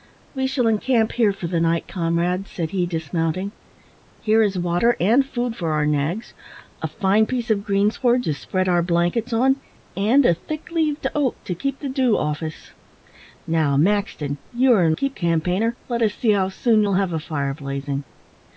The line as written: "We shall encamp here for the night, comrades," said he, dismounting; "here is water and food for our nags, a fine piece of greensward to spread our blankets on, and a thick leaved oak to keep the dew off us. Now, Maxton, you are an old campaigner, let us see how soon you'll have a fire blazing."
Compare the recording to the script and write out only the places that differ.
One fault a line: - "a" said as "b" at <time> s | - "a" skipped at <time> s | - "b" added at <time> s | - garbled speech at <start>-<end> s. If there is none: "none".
- "old" said as "keep" at 14.9 s